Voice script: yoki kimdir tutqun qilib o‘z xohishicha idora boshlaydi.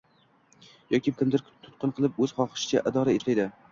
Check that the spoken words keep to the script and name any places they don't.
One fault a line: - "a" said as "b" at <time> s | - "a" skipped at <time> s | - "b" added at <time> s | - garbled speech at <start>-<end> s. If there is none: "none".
none